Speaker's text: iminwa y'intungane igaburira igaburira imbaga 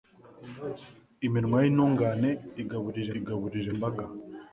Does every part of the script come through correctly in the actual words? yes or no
yes